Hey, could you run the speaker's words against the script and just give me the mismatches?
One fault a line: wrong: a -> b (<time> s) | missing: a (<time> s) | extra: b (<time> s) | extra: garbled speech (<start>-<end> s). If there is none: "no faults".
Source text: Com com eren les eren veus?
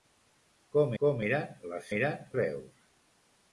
no faults